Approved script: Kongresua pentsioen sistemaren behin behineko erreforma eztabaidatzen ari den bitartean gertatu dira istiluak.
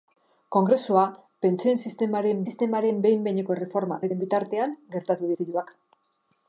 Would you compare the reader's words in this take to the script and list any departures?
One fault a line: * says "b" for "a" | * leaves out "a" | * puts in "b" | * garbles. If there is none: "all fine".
* puts in "sistemaren"
* leaves out "eztabaidatzen"
* leaves out "dira"